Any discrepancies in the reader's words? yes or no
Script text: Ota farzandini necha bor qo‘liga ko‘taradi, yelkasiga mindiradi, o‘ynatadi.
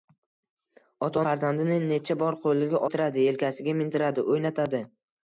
no